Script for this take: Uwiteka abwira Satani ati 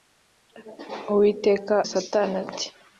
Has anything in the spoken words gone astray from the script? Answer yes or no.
yes